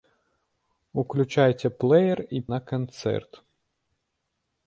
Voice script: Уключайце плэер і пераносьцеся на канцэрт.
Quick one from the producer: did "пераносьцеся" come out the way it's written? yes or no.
no